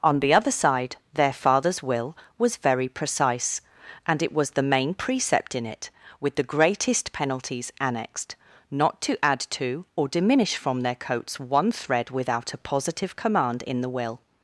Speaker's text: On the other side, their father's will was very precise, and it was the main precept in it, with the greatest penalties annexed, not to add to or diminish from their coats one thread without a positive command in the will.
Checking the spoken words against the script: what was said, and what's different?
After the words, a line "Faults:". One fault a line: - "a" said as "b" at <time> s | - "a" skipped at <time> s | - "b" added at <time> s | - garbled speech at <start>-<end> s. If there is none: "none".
On the other side, their father's will was very precise, and it was the main precept in it, with the greatest penalties annexed, not to add to or diminish from their coats one thread without a positive command in the will.
Faults:
none